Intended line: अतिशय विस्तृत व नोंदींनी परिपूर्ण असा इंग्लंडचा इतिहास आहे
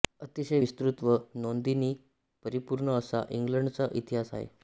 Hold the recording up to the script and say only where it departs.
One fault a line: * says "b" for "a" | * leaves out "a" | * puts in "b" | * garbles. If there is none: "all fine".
all fine